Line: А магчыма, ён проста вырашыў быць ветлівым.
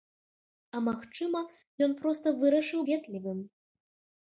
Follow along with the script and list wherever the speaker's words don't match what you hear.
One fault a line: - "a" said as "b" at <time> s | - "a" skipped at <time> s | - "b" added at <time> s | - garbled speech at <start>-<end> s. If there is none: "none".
- "быць" skipped at 2.8 s